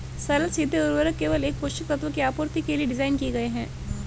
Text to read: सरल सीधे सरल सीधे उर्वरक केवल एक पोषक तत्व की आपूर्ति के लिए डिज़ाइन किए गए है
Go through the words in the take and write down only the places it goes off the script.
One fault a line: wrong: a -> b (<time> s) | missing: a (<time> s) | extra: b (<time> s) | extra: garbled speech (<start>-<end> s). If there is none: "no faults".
missing: सरल सीधे (0.8 s)